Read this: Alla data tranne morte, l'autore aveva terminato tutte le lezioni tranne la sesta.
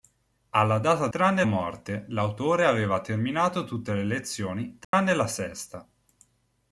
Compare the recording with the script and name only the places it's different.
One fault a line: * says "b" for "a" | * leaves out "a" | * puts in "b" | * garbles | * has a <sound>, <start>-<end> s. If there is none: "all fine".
* has a dropout, 4.8-4.9 s